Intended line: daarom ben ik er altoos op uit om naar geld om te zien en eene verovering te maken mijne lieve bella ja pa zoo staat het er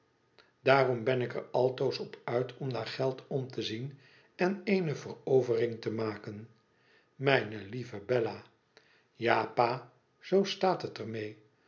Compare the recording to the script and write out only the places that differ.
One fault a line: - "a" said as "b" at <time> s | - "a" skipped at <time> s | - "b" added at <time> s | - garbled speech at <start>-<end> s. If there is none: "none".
none